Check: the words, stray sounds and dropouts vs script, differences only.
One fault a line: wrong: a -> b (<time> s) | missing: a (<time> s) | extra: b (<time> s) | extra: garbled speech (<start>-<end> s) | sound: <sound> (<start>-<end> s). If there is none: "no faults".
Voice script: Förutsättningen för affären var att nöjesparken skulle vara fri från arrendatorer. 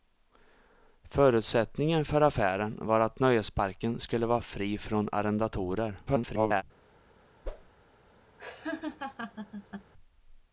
extra: garbled speech (6.1-6.6 s)
sound: whoosh (7.4-7.7 s)
sound: laugh (8.4-9.9 s)